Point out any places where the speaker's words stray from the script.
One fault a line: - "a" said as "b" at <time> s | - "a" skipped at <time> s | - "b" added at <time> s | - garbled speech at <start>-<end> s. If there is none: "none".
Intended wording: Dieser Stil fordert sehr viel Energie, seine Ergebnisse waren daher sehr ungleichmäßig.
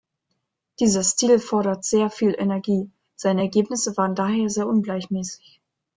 none